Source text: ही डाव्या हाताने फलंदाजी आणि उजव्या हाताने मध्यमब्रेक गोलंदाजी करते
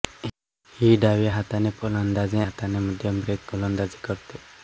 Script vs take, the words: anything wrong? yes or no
yes